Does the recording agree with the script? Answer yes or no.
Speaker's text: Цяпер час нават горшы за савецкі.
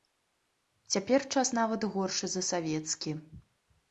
yes